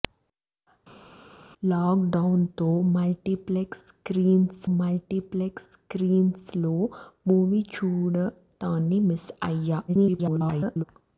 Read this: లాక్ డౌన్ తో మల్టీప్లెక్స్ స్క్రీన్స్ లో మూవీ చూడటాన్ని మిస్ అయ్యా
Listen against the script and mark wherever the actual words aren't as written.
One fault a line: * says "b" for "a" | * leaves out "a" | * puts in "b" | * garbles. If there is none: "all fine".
* puts in "మల్టీప్లెక్స్ స్క్రీన్స్"
* garbles